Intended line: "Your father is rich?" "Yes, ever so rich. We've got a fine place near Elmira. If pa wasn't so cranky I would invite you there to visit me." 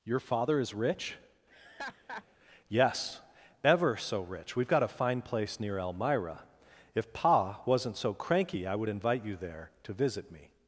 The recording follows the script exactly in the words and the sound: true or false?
false